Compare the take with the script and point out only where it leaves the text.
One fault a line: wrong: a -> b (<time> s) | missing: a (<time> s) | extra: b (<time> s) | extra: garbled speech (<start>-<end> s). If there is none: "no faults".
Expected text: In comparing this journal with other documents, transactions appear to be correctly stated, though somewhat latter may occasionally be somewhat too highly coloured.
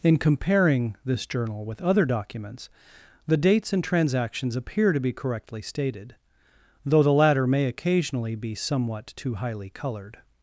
extra: the dates and (3.3 s)
wrong: somewhat -> the (7.0 s)